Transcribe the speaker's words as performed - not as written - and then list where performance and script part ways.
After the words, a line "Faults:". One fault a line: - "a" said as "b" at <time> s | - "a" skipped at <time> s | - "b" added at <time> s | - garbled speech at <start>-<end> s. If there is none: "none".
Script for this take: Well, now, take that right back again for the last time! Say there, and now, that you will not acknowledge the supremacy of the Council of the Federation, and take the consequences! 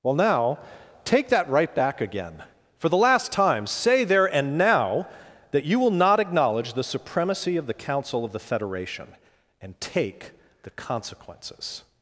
Well, now, take that right back again for the last time! Say there, and now, that you will not acknowledge the supremacy of the Council of the Federation, and take the consequences!
Faults:
none